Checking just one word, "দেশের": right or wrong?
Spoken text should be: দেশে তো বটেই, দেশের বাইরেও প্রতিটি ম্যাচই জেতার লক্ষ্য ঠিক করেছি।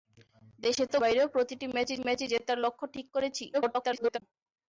wrong